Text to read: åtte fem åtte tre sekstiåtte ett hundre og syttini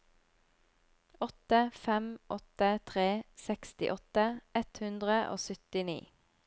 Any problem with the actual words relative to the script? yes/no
no